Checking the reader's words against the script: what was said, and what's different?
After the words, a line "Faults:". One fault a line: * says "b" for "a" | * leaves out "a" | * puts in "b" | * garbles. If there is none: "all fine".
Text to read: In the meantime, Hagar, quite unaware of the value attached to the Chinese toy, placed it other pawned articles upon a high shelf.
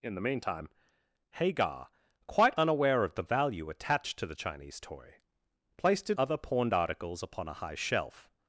In the meantime, Hagar, quite unaware of the value attached to the Chinese toy, placed it other pawned articles upon a high shelf.
Faults:
all fine